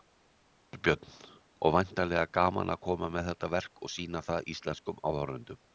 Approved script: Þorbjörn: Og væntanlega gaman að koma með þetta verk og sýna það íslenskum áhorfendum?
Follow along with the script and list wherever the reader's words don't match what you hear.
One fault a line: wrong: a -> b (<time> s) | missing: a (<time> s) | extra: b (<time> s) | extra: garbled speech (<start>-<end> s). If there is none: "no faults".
no faults